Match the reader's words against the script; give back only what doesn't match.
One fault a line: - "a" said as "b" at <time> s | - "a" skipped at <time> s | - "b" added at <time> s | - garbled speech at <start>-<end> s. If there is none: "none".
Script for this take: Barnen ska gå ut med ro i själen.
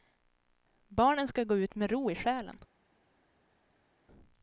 none